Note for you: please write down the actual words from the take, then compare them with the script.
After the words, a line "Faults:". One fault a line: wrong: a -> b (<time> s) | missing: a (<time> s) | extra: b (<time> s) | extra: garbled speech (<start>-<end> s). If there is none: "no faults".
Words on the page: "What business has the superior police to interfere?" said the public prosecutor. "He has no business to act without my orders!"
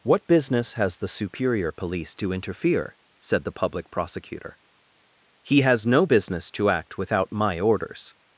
"What business has the superior police to interfere?" said the public prosecutor. "He has no business to act without my orders!"
Faults:
no faults